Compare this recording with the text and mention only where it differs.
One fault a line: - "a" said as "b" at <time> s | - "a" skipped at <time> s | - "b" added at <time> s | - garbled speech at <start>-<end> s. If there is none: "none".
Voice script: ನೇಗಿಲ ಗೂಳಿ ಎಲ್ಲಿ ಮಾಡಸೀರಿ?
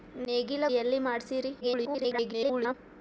- "ಗೂಳಿ" skipped at 0.6 s
- garbled speech at 1.6-2.7 s